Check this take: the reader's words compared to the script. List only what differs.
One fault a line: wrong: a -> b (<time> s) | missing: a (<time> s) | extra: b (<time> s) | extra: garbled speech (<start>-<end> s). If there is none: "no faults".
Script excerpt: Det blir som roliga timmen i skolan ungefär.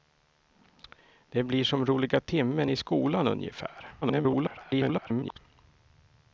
extra: garbled speech (4.0-5.4 s)